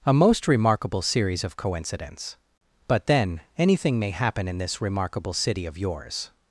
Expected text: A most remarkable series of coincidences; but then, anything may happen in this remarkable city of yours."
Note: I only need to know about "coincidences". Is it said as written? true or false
false